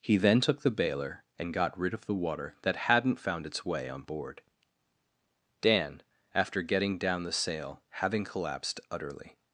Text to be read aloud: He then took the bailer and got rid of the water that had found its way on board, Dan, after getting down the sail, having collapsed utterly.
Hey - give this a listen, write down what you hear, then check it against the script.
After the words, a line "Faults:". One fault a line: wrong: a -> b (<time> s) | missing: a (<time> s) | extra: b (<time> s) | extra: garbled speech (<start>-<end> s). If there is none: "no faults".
He then took the bailer and got rid of the water that hadn't found its way on board, Dan, after getting down the sail, having collapsed utterly.
Faults:
wrong: had -> hadn't (2.8 s)